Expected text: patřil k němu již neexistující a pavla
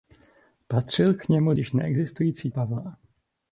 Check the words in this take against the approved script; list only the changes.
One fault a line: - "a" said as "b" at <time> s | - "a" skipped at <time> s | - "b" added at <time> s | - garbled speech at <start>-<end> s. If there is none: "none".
none